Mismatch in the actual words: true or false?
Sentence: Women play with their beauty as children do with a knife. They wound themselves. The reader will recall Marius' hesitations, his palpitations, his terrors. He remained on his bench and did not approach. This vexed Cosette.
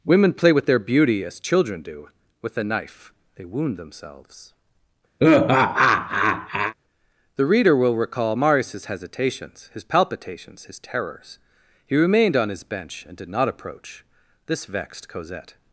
false